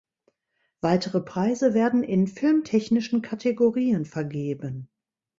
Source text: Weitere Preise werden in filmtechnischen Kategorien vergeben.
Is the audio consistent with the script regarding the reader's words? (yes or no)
yes